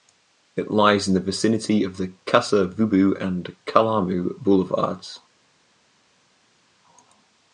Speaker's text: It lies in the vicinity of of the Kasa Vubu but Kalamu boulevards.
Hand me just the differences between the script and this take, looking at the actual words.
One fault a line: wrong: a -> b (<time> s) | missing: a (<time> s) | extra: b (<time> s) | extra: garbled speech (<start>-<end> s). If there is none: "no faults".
missing: of (2.0 s)
wrong: but -> and (3.2 s)